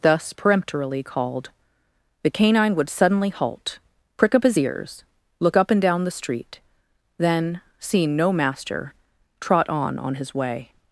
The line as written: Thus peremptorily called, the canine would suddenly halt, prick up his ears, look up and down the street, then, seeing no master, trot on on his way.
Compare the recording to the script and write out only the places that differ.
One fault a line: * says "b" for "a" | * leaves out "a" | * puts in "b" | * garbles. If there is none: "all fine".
all fine